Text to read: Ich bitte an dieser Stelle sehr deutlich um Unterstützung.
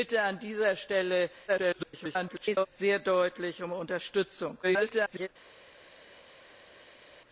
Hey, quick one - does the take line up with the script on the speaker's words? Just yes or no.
no